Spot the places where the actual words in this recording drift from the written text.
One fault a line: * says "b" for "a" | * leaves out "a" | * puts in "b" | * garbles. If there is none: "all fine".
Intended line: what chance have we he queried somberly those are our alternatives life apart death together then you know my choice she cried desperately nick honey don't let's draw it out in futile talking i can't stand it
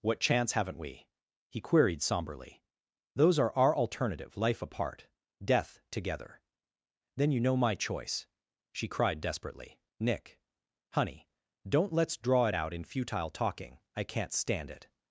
* says "haven't" for "have"
* says "alternative" for "alternatives"